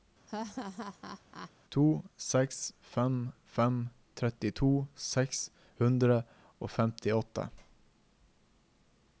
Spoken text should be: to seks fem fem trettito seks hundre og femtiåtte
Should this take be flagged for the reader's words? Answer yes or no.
no